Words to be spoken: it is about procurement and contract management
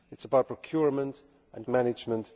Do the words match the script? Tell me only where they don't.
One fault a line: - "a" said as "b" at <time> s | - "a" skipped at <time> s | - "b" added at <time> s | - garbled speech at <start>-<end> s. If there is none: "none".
- "contract" skipped at 1.7 s